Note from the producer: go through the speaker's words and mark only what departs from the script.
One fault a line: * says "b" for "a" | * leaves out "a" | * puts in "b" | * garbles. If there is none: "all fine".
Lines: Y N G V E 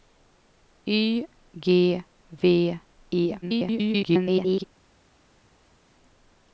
* leaves out "N"
* garbles